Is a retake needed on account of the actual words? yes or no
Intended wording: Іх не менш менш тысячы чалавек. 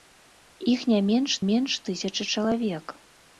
no